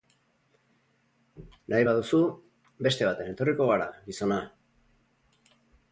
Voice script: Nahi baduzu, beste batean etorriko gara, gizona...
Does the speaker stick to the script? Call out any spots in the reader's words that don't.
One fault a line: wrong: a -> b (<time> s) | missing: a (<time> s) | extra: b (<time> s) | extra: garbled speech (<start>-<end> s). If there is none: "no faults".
no faults